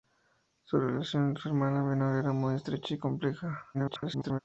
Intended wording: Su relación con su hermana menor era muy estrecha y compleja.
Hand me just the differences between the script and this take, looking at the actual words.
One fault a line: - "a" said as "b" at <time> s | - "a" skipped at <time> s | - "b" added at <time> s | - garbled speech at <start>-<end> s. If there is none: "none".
- garbled speech at 3.7-4.4 s